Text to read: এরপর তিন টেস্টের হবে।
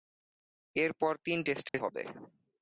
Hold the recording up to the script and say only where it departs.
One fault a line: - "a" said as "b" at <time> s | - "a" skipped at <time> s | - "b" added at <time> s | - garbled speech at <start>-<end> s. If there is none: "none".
none